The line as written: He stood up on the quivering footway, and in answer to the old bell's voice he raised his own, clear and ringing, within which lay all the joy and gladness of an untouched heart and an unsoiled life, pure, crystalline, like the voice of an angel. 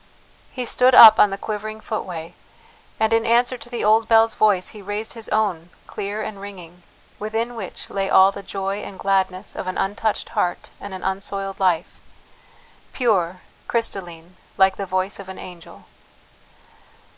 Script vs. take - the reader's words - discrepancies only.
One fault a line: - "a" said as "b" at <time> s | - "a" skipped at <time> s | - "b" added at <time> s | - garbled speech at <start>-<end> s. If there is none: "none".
none